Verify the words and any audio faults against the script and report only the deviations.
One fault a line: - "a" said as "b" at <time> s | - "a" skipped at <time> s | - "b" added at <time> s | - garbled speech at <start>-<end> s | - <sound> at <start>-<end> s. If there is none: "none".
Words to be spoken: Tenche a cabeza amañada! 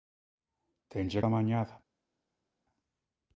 - "cabeza" skipped at 1.2 s